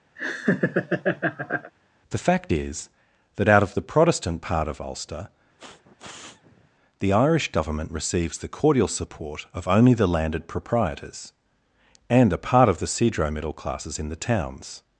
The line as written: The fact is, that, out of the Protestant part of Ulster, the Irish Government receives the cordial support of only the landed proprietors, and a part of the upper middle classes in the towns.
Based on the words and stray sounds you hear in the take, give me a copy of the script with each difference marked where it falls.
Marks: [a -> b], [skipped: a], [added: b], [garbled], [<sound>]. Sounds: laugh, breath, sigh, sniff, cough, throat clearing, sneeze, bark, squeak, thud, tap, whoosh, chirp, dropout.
[laugh] The fact is, that, out of the Protestant part of Ulster, [sniff] the Irish Government receives the cordial support of only the landed proprietors, and a part of the [upper -> cedro] middle classes in the towns.